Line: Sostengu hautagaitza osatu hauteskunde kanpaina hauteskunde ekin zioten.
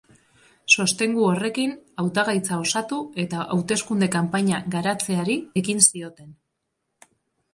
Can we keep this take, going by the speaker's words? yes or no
no